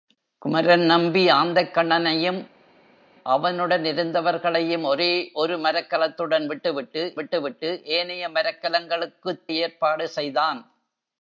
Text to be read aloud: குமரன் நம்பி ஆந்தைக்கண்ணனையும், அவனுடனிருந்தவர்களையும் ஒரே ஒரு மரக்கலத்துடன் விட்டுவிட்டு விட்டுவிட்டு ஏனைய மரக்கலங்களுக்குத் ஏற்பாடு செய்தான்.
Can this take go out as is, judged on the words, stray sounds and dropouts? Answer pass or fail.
pass